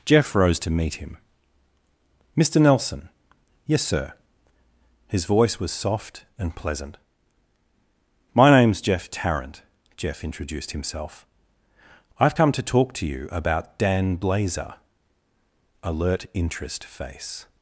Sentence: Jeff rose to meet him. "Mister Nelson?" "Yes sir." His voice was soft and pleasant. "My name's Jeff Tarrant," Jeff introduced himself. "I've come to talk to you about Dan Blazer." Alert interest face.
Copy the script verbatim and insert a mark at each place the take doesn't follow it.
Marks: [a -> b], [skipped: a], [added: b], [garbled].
Jeff rose to meet him. "Mister Nelson?" "Yes sir." His voice was soft and pleasant. "My name's Jeff Tarrant," Jeff introduced himself. "I've come to talk to you about Dan Blazer." Alert interest face.